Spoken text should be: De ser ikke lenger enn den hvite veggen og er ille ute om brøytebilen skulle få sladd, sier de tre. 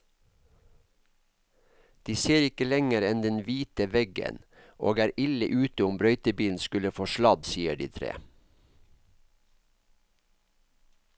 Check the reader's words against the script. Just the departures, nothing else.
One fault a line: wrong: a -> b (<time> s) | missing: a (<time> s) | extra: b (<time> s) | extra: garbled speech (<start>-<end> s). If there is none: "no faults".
no faults